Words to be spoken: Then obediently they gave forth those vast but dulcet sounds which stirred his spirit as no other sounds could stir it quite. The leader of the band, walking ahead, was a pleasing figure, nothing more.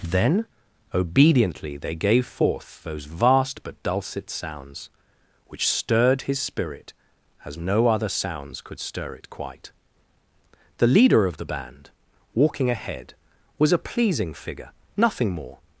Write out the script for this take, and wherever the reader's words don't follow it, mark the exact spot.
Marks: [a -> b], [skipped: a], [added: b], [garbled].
Then obediently they gave forth those vast but dulcet sounds which stirred his spirit as no other sounds could stir it quite. The leader of the band, walking ahead, was a pleasing figure, nothing more.